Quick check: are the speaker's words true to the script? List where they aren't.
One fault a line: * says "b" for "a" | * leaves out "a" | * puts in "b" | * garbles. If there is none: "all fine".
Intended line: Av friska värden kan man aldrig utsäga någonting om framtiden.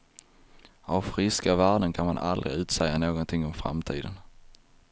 all fine